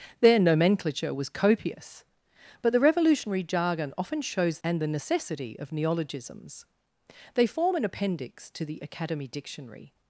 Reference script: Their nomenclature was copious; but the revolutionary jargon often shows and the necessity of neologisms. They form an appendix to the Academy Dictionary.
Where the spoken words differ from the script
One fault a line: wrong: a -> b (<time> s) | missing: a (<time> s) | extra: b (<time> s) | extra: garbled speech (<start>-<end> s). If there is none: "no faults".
no faults